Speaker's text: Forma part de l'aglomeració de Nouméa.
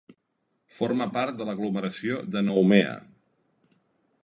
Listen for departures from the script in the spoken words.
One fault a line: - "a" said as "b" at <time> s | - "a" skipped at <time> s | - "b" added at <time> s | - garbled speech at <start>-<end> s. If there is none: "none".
none